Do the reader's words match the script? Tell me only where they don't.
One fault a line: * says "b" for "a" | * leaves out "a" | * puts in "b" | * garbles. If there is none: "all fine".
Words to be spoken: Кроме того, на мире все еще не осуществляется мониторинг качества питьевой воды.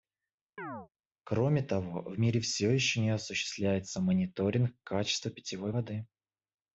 * says "в" for "на"